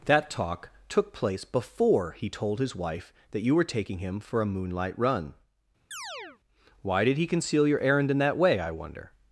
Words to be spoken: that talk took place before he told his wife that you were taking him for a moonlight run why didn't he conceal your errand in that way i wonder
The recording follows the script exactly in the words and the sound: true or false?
false